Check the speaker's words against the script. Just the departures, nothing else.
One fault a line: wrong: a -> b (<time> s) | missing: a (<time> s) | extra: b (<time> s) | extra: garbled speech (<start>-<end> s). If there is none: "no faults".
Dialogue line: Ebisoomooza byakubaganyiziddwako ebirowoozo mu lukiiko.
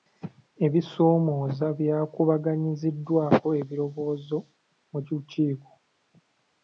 no faults